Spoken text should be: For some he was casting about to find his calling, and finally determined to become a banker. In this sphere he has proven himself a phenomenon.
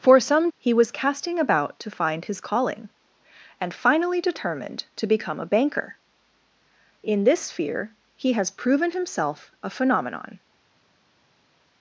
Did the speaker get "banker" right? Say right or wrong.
right